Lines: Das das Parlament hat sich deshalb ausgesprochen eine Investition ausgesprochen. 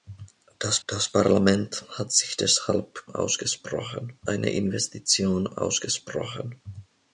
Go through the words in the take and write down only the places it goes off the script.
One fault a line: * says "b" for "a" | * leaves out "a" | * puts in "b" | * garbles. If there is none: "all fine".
all fine